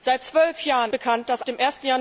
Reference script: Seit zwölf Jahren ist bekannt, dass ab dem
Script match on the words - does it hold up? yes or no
no